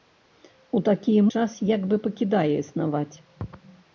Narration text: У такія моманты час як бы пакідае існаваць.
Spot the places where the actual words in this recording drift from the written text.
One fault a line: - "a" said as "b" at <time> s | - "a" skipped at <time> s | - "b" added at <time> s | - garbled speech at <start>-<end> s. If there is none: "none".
- "моманты" skipped at 1.2 s